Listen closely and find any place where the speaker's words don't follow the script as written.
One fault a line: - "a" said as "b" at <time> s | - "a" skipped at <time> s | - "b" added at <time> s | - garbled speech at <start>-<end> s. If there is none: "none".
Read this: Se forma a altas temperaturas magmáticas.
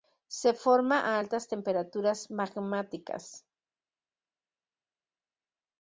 none